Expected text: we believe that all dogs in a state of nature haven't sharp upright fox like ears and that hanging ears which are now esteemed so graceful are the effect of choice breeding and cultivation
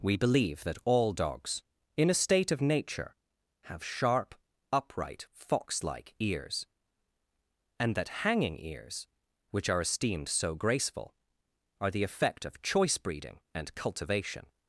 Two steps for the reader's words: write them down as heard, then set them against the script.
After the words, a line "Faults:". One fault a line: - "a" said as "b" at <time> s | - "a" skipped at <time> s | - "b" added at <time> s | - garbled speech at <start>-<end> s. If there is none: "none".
we believe that all dogs in a state of nature have sharp upright fox like ears and that hanging ears which are esteemed so graceful are the effect of choice breeding and cultivation
Faults:
- "haven't" said as "have" at 3.6 s
- "now" skipped at 9.8 s